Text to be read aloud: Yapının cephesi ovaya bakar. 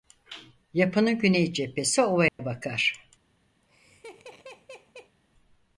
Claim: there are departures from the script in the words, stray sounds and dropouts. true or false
true